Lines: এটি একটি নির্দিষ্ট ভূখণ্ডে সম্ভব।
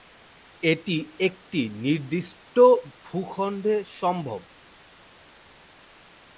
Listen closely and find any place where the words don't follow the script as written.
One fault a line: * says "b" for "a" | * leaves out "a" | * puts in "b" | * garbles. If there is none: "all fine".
all fine